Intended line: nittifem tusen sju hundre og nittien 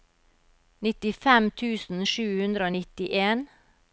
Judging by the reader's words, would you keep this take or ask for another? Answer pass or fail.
pass